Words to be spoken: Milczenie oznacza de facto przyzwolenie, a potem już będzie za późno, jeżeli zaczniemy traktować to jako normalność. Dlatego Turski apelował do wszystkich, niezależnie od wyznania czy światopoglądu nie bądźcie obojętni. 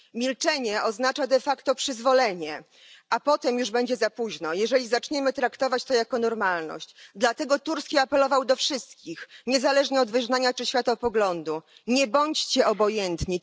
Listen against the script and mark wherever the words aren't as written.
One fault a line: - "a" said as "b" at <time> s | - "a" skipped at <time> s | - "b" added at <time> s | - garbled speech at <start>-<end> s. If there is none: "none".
none